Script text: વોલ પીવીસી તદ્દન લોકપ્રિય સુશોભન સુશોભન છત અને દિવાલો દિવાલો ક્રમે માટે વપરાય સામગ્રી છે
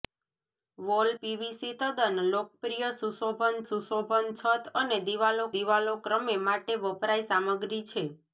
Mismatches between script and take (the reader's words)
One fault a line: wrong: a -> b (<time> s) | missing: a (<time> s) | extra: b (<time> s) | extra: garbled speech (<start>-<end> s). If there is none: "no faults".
no faults